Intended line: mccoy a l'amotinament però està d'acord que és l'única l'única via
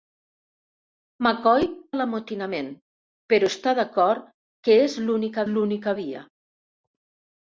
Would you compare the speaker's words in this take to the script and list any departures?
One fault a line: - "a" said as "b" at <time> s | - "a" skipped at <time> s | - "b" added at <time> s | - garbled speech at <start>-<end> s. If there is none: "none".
none